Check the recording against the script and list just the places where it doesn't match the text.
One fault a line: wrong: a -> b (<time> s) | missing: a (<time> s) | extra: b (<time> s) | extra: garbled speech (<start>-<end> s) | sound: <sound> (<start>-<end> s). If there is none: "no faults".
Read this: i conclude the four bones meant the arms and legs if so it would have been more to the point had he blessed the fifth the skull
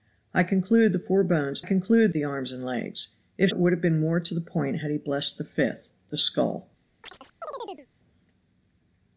wrong: meant -> conclude (1.6 s)
missing: so (3.5 s)
sound: chirp (7.0-7.9 s)